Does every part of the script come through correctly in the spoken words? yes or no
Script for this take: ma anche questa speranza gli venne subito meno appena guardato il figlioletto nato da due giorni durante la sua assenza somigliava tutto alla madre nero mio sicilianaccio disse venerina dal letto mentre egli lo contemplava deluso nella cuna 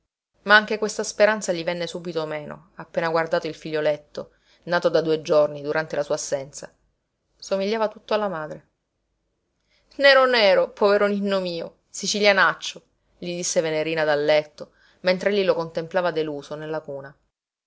no